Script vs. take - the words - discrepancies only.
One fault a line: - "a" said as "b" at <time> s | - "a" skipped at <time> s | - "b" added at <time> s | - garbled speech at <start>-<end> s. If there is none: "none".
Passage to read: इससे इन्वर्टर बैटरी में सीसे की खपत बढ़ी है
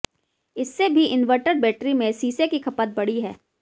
- "भी" added at 0.9 s